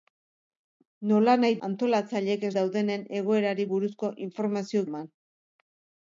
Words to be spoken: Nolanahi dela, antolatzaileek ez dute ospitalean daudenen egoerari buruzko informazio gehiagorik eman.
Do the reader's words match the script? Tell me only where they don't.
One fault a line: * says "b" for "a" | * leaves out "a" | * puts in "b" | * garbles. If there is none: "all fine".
* leaves out "dela"
* leaves out "dute ospitalean"
* leaves out "gehiagorik"